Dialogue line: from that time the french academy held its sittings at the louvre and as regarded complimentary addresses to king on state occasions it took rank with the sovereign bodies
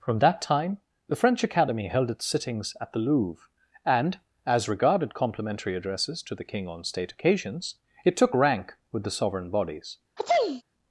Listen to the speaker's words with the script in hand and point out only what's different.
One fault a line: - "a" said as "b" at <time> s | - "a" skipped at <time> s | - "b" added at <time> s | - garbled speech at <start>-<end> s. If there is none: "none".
- "the" added at 6.3 s